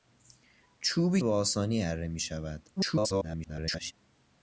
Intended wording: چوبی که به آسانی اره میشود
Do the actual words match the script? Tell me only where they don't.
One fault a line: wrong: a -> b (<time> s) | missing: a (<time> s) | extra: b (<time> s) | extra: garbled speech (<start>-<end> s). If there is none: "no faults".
missing: که (1.2 s)
extra: garbled speech (2.8-3.9 s)